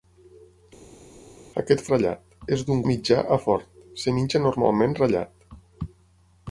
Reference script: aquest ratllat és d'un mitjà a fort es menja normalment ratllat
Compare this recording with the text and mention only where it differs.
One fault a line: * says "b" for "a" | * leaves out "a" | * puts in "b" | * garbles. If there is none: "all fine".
all fine